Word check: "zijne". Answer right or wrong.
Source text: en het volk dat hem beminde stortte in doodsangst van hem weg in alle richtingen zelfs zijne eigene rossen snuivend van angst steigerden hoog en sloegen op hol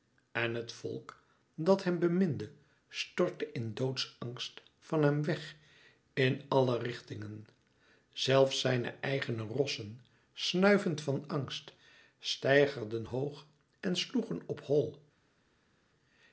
right